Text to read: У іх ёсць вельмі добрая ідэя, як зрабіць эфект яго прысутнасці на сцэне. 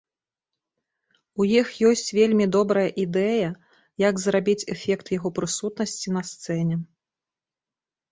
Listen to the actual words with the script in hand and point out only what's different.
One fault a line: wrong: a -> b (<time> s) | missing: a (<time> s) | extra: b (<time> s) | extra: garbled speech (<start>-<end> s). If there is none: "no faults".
no faults